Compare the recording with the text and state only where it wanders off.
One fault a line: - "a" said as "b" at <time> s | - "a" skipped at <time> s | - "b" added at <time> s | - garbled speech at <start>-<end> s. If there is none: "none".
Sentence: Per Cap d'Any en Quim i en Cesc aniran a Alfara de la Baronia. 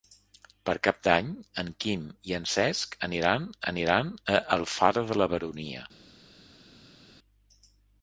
- "aniran" added at 3.7 s